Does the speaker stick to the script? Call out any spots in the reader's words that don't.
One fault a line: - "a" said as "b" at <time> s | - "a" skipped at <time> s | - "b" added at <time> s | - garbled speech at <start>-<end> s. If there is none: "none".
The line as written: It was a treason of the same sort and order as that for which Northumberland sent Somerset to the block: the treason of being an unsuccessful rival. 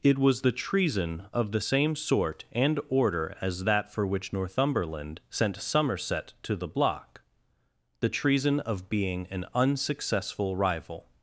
- "a" said as "the" at 0.4 s